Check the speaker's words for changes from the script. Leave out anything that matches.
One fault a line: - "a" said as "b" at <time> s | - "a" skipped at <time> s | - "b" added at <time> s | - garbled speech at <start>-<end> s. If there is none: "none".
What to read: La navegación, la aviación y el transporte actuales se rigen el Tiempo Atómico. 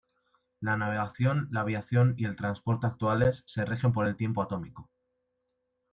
- "por" added at 3.9 s